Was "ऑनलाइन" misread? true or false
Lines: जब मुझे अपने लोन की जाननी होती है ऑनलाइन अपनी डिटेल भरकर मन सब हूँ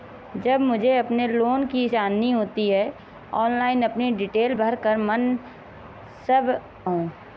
false